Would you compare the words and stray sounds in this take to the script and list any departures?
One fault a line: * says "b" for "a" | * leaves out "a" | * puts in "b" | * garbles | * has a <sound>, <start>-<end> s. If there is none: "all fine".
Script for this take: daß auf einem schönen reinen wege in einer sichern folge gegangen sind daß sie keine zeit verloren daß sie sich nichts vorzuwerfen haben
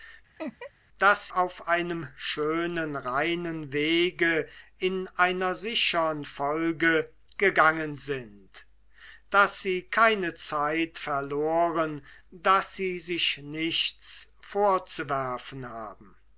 * has a laugh, 0.4-0.7 s